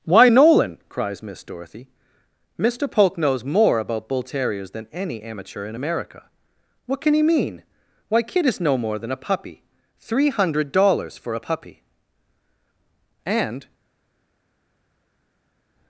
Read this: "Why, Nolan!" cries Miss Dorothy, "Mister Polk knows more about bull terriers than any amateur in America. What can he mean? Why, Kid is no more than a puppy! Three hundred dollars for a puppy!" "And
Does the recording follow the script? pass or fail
pass